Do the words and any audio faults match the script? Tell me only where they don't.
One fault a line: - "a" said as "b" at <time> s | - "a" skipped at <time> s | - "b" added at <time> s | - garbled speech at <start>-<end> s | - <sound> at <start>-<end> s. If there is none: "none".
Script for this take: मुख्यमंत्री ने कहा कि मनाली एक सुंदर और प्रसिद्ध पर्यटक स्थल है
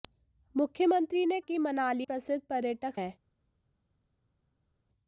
- "कहा" skipped at 1.4 s
- "एक सुंदर और" skipped at 2.1 s
- "स्थल" skipped at 3.0 s